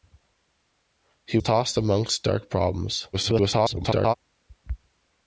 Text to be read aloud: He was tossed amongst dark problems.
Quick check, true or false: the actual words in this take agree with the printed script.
false